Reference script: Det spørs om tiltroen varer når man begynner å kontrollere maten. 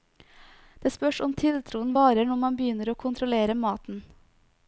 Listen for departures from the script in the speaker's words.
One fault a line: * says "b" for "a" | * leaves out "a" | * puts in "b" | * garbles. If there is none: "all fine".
all fine